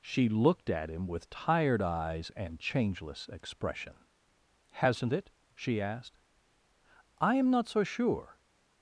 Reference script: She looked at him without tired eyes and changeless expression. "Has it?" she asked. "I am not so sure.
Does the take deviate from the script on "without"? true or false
true